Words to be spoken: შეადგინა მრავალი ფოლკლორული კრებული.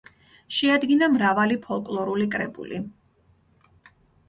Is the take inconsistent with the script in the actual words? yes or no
no